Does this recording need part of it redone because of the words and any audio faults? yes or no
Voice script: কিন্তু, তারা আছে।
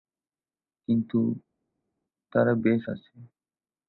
yes